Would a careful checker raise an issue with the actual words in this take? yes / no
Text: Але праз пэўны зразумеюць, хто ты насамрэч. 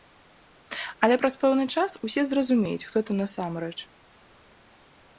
yes